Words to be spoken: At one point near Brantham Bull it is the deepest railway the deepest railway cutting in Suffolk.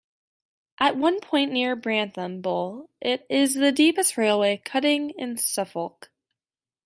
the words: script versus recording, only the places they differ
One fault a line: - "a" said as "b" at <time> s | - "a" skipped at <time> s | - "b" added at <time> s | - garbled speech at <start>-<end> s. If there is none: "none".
- "the deepest railway" skipped at 4.6 s